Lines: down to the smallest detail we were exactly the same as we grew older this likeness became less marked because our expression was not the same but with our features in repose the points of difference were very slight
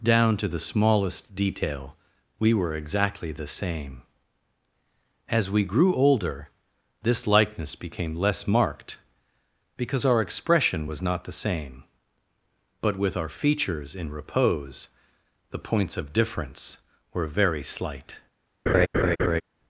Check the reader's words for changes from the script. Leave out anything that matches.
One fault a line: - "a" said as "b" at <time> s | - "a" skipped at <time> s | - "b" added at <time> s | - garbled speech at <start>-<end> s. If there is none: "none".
none